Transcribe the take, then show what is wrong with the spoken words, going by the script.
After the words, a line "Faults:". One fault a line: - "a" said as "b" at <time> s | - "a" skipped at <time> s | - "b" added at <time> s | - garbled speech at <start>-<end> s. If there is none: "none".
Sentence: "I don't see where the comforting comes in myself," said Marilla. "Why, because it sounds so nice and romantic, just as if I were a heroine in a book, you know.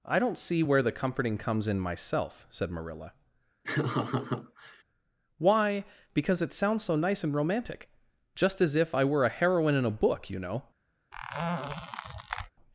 "I don't see where the comforting comes in myself," said Marilla. "Why, because it sounds so nice and romantic, just as if I were a heroine in a book, you know.
Faults:
none